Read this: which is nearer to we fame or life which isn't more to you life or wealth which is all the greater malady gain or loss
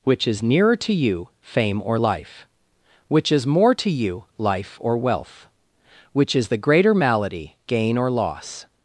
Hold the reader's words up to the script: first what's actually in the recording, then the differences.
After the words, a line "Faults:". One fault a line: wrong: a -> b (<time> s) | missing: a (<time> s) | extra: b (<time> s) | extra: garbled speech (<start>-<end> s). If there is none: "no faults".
which is nearer to you fame or life which is more to you life or wealth which is the greater malady gain or loss
Faults:
wrong: we -> you (0.9 s)
wrong: isn't -> is (3.3 s)
missing: all (6.5 s)